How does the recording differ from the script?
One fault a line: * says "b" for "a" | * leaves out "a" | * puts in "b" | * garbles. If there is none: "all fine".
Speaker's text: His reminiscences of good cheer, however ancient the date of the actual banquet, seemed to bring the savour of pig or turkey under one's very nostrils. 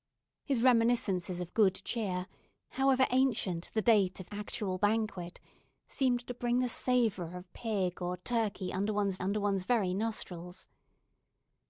* leaves out "the"
* puts in "under one's"